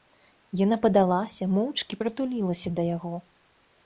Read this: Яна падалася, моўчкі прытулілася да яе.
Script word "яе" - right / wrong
wrong